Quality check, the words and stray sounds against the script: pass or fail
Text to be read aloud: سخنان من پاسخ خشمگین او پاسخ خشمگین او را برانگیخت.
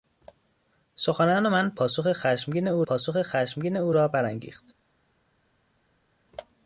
pass